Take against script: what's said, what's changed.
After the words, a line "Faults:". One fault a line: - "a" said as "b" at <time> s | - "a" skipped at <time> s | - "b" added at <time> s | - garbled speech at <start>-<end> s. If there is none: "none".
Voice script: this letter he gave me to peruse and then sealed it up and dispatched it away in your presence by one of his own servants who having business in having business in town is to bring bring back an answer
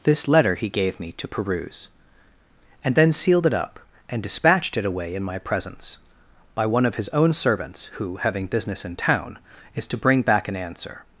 this letter he gave me to peruse and then sealed it up and dispatched it away in my presence by one of his own servants who having business in town is to bring back an answer
Faults:
- "your" said as "my" at 5.2 s
- "having business in" skipped at 8.9 s
- "bring" skipped at 10.2 s